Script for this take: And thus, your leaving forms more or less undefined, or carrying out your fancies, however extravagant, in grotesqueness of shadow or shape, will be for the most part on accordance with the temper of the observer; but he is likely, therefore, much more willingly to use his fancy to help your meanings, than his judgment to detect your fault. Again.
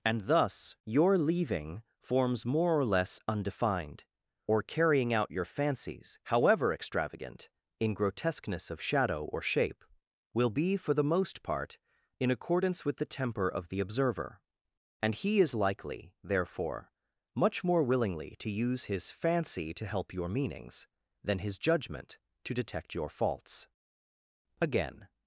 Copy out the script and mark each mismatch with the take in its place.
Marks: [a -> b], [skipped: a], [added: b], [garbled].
And thus, your leaving forms more or less undefined, or carrying out your fancies, however extravagant, in grotesqueness of shadow or shape, will be for the most part [on -> in] accordance with the temper of the observer; [but -> and] he is likely, therefore, much more willingly to use his fancy to help your meanings, than his judgment to detect your [fault. -> faults] Again.